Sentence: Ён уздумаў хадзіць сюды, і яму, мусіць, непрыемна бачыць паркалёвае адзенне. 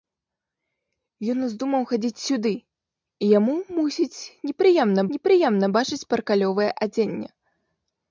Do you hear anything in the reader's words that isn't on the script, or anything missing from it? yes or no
yes